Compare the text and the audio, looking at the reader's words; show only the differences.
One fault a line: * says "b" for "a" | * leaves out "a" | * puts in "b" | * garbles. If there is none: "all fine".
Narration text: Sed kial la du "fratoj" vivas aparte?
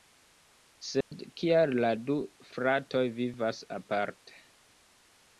all fine